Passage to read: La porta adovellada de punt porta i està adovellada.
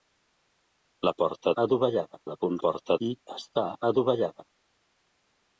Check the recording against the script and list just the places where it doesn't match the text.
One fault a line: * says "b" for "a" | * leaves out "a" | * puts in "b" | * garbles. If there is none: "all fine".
all fine